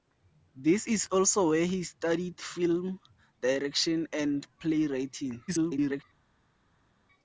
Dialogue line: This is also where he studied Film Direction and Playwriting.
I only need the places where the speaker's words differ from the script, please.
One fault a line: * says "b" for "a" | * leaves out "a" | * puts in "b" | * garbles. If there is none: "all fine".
* garbles